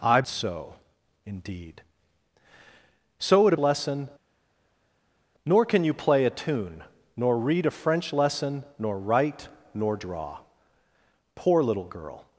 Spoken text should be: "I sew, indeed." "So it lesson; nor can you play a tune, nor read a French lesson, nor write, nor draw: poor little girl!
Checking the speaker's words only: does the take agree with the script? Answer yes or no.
yes